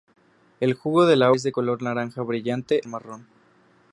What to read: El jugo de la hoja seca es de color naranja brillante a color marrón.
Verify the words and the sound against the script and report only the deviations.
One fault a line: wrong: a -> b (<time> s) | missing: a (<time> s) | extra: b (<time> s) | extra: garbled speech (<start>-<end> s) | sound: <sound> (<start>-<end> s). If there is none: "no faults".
missing: hoja seca (1.3 s)
missing: a color (2.8 s)